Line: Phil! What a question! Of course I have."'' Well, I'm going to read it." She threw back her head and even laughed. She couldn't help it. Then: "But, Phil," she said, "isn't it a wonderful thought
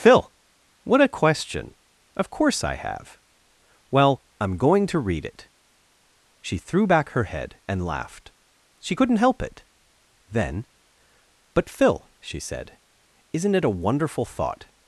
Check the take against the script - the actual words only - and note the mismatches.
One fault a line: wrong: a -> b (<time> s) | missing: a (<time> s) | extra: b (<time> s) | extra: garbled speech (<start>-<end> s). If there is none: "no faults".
missing: even (7.8 s)